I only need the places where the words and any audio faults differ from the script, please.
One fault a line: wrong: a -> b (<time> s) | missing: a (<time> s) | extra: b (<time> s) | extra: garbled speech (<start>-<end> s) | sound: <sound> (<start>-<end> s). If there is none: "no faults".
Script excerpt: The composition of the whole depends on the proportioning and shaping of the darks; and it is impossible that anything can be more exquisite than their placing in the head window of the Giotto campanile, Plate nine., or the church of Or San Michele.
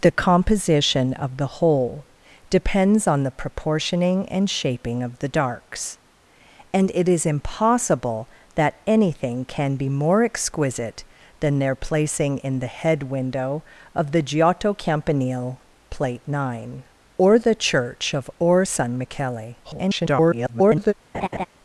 extra: garbled speech (19.6-20.9 s)
sound: laugh (21.1-21.5 s)